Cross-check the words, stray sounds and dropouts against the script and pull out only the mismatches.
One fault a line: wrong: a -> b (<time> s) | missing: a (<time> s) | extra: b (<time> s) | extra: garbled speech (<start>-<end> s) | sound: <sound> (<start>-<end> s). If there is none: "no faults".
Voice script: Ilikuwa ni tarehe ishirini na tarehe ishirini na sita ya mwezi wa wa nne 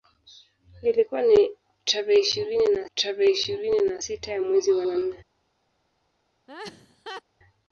sound: laugh (6.5-7.2 s)